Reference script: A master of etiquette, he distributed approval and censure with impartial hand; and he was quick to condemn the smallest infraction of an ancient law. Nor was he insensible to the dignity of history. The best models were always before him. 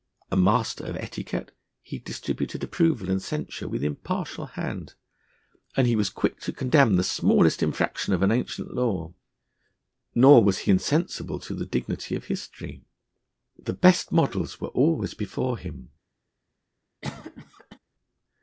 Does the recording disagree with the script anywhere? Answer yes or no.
no